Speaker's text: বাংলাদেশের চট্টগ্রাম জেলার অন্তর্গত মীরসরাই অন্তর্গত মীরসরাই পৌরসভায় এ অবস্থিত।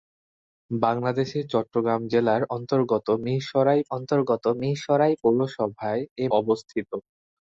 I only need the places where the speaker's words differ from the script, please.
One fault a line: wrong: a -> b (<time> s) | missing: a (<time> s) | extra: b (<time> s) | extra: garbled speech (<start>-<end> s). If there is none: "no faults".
no faults